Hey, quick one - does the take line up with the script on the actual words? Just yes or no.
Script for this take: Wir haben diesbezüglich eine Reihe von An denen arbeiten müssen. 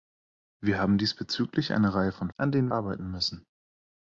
yes